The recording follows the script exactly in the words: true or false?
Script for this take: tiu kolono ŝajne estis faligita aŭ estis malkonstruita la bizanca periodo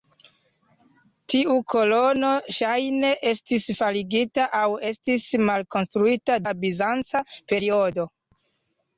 true